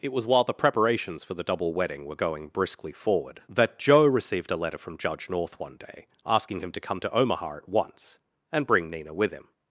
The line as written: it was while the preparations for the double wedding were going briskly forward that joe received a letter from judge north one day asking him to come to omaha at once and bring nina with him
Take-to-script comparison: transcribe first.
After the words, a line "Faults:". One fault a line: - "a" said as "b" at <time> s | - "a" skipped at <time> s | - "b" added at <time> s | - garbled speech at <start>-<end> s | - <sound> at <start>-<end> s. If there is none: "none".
it was while the preparations for the double wedding were going briskly forward that joe received a letter from judge north one day asking him to come to omaha at once and bring nina with him
Faults:
none